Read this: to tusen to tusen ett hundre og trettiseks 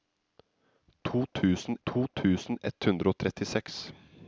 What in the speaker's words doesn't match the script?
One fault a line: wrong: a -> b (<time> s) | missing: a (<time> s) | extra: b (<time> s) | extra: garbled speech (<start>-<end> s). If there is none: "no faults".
no faults